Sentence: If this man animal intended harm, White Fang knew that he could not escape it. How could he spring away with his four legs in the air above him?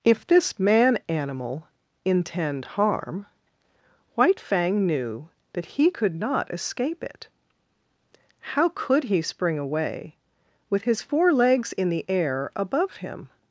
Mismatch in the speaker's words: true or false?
true